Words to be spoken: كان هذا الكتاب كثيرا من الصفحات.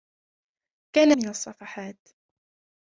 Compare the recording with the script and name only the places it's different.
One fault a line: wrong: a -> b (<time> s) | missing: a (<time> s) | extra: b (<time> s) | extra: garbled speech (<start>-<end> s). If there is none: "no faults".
missing: هذا الكتاب كثيرا (1.1 s)